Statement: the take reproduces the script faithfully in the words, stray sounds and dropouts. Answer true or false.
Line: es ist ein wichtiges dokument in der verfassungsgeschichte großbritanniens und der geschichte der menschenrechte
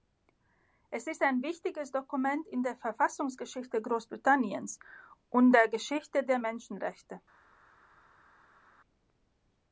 true